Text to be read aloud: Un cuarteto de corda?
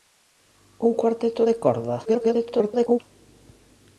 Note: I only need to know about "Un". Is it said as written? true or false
true